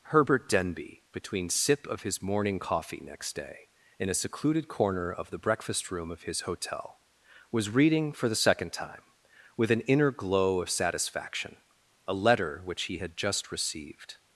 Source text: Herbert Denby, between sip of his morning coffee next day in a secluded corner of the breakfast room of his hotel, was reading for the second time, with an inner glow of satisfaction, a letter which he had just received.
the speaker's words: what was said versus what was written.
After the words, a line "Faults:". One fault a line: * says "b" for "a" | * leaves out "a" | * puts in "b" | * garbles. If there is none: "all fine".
Herbert Denby, between sip of his morning coffee next day in a secluded corner of the breakfast room of his hotel, was reading for the second time, with an inner glow of satisfaction, a letter which he had just received.
Faults:
all fine